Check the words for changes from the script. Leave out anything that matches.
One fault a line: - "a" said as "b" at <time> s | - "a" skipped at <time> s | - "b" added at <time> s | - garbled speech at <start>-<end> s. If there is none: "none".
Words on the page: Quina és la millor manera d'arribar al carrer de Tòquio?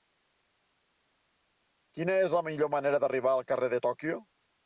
none